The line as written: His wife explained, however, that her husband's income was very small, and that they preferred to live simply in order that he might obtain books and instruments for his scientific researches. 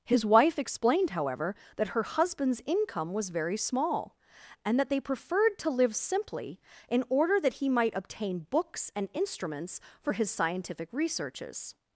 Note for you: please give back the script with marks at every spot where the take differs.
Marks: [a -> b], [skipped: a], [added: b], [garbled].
His wife explained, however, that her husband's income was very small, and that they preferred to live simply in order that he might obtain books and instruments for his scientific researches.